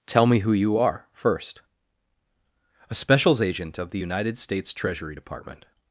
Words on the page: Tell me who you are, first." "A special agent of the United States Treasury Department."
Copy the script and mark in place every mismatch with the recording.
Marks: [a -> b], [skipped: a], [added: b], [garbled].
Tell me who you are, first." "A [special -> specials] agent of the United States Treasury Department."